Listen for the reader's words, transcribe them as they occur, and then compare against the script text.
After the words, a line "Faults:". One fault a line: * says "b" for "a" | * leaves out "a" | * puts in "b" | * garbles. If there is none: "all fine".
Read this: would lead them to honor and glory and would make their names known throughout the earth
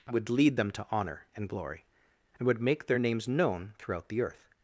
would lead them to honor and glory and would make their names known throughout the earth
Faults:
all fine